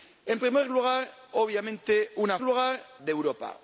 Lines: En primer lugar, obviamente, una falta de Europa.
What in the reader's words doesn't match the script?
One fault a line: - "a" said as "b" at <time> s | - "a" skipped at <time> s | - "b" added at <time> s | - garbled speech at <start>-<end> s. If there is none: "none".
- "falta" said as "lugar" at 2.4 s